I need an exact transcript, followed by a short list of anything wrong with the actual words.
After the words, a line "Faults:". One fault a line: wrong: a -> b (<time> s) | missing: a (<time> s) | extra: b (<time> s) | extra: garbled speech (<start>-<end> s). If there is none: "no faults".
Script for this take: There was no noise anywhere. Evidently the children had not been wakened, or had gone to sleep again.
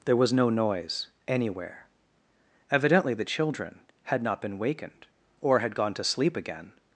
There was no noise anywhere. Evidently the children had not been wakened, or had gone to sleep again.
Faults:
no faults